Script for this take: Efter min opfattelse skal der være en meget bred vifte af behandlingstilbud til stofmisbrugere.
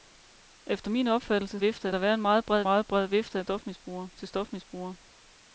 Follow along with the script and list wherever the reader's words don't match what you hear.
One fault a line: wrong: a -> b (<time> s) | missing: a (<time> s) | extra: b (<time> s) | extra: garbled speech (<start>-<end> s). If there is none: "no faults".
wrong: skal -> vifte (1.5 s)
extra: meget bred (2.6 s)
wrong: behandlingstilbud -> stofmisbrugere (3.4 s)